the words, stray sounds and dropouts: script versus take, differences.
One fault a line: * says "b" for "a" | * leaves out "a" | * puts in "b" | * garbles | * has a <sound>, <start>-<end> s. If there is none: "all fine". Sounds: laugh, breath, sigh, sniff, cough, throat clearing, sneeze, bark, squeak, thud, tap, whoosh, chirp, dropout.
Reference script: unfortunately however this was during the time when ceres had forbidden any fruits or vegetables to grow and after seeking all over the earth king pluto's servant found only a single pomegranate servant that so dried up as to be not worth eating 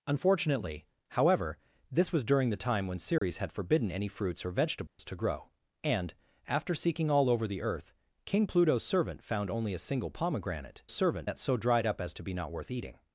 * has a dropout, 3.2-3.2 s
* has a dropout, 4.9-5.0 s